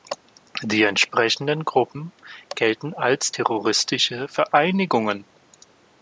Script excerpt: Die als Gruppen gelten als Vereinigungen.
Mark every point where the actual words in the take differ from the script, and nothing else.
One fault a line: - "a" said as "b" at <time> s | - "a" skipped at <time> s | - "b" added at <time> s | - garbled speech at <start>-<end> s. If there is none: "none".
- "als" said as "entsprechenden" at 0.8 s
- "terroristische" added at 3.3 s